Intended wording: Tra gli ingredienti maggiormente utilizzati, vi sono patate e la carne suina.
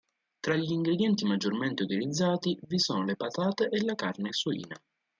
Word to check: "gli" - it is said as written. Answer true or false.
true